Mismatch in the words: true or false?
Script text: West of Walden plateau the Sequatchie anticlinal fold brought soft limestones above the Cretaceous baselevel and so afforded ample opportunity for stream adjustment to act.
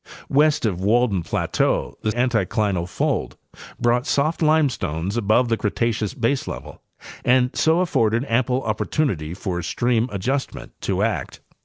true